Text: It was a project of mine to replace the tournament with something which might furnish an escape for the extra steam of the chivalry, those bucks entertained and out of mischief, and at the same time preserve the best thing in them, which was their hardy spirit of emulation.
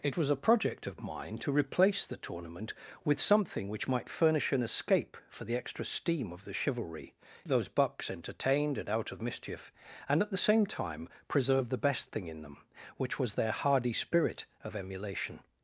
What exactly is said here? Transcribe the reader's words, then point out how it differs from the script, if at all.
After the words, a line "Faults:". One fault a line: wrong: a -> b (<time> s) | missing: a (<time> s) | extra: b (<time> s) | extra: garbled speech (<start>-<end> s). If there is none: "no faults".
It was a project of mine to replace the tournament with something which might furnish an escape for the extra steam of the chivalry, those bucks entertained and out of mischief, and at the same time preserve the best thing in them, which was their hardy spirit of emulation.
Faults:
no faults